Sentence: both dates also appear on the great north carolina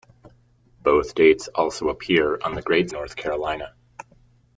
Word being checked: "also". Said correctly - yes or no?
yes